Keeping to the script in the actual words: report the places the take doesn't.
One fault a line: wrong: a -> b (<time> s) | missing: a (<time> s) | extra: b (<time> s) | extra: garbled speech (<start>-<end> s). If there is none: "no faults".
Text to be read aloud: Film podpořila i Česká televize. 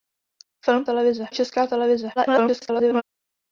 wrong: podpořila -> televize (0.8 s)
extra: garbled speech (2.2-3.0 s)